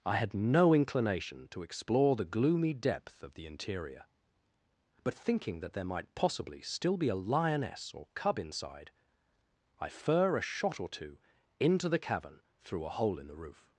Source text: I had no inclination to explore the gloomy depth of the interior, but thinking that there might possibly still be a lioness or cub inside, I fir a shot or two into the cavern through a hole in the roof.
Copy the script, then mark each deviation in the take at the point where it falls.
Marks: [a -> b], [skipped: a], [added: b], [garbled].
I had no inclination to explore the gloomy depth of the interior, but thinking that there might possibly still be a lioness or cub inside, I fir a shot or two into the cavern through a hole in the roof.